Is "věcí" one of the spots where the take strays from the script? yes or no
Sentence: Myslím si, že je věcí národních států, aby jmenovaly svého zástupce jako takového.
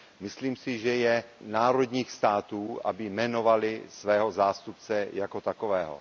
yes